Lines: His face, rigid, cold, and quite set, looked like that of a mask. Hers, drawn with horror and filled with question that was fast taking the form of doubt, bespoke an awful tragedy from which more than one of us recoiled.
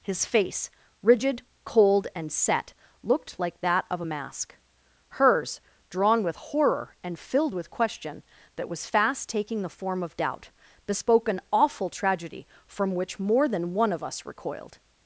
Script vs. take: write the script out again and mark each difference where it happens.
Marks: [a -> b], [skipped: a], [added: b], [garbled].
His face, rigid, cold, and [skipped: quite] set, looked like that of a mask. Hers, drawn with horror and filled with question that was fast taking the form of doubt, bespoke an awful tragedy from which more than one of us recoiled.